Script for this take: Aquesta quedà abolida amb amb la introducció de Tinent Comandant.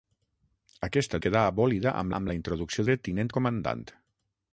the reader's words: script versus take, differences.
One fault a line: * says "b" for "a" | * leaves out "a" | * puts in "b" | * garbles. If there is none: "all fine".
all fine